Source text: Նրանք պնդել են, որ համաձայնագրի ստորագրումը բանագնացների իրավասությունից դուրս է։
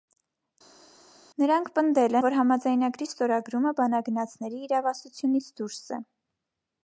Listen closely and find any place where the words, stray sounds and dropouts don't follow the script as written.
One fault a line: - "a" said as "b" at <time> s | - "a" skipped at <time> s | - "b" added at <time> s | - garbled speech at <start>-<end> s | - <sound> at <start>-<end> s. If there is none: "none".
- "են" skipped at 2.2 s